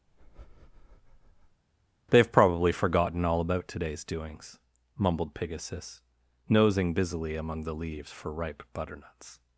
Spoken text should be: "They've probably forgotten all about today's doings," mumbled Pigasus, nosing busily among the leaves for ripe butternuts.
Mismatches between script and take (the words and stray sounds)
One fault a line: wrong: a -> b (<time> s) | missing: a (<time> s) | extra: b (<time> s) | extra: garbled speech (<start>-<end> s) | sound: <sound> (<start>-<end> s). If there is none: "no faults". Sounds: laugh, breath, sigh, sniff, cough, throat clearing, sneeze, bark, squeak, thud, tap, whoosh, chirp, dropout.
sound: breath (0.1-1.6 s)